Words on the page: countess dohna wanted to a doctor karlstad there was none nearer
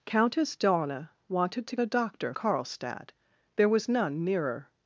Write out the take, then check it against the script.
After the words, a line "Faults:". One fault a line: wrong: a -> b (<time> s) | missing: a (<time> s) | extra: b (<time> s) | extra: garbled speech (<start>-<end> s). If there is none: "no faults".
countess dohna wanted to a doctor karlstad there was none nearer
Faults:
no faults